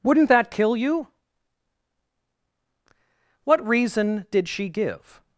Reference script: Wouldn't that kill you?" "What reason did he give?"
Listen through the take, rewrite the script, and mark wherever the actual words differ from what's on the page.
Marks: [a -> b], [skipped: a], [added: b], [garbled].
Wouldn't that kill you?" "What reason did [he -> she] give?"